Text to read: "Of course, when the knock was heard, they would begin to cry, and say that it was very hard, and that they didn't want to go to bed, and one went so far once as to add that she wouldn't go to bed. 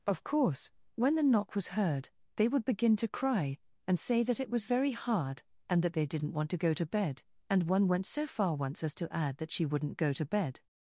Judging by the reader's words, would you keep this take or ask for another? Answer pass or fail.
pass